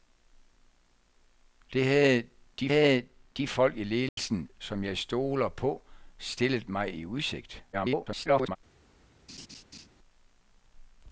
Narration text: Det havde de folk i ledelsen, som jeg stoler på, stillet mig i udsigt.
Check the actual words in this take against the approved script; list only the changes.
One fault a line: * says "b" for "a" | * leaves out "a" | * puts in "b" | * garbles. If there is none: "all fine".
* puts in "havde de"
* garbles